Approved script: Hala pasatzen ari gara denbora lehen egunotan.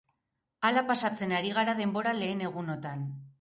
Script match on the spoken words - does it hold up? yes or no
yes